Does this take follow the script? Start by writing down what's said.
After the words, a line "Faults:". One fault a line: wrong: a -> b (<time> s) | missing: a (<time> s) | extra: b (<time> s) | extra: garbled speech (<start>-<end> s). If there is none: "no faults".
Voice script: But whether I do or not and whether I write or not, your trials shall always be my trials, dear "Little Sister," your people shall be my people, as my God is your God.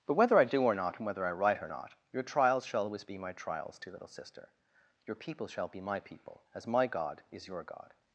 But whether I do or not and whether I write or not, your trials shall always be my trials, dear "Little Sister," your people shall be my people, as my God is your God.
Faults:
no faults